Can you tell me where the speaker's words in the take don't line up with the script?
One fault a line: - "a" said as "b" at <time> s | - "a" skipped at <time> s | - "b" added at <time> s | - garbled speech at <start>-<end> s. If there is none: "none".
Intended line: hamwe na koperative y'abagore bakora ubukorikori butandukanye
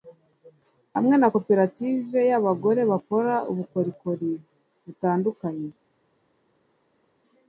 none